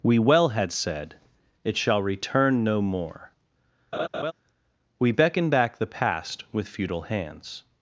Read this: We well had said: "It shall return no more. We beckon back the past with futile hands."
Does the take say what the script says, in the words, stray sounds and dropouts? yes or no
no